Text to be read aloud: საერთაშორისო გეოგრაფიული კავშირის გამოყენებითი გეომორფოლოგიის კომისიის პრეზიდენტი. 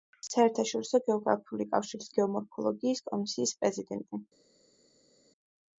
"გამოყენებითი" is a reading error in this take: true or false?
true